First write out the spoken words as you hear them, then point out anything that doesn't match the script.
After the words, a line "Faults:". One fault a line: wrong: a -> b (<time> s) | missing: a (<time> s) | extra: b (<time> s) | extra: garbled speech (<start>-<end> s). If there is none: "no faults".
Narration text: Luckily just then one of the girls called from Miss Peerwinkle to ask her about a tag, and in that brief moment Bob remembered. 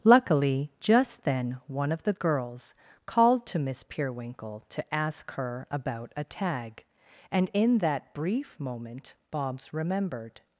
Luckily just then one of the girls called to Miss Peerwinkle to ask her about a tag, and in that brief moment Bobs remembered.
Faults:
wrong: from -> to (3.5 s)
wrong: Bob -> Bobs (9.3 s)